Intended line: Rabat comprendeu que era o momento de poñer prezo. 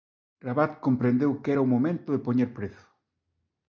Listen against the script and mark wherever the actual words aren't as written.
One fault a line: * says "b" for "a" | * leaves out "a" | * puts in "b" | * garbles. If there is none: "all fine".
all fine